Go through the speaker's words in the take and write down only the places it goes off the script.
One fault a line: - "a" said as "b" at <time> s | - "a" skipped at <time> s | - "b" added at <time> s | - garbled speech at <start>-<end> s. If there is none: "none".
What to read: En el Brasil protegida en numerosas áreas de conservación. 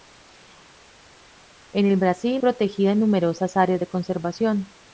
none